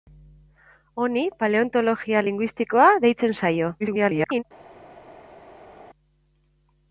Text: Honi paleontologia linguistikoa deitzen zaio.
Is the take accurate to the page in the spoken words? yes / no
no